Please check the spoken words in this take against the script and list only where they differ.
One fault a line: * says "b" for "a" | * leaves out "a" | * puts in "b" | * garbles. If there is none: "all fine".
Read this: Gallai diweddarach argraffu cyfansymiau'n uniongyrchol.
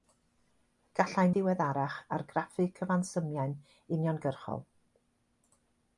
all fine